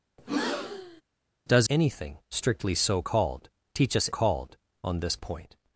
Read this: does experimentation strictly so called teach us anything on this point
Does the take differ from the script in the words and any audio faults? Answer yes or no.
yes